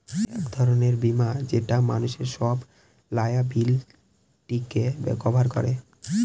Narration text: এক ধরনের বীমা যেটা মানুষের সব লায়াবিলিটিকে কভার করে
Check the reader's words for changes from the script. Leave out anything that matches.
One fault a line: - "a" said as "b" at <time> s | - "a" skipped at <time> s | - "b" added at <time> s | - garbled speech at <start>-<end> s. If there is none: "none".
none